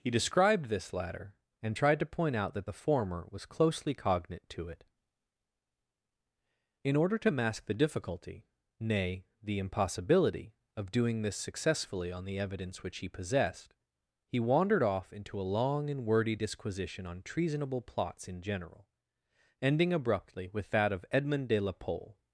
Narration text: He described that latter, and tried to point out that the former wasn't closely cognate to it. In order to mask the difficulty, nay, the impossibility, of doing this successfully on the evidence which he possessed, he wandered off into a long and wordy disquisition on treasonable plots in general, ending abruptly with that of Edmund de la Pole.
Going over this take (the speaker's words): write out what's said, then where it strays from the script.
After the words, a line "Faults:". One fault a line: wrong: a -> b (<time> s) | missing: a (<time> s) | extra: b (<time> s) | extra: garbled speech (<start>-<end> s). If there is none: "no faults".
He described this latter, and tried to point out that the former was closely cognate to it. In order to mask the difficulty, nay, the impossibility, of doing this successfully on the evidence which he possessed, he wandered off into a long and wordy disquisition on treasonable plots in general, ending abruptly with that of Edmund de la Pole.
Faults:
wrong: that -> this (0.7 s)
wrong: wasn't -> was (3.3 s)